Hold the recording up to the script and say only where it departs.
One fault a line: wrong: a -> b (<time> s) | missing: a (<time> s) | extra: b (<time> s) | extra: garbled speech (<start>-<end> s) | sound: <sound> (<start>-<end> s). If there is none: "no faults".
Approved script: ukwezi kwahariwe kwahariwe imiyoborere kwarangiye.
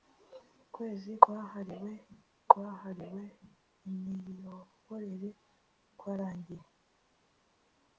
no faults